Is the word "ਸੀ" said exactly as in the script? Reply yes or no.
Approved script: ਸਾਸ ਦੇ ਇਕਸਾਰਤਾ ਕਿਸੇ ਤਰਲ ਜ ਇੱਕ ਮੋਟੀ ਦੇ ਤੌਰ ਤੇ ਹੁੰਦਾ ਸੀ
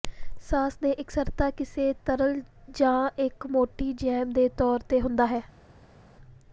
no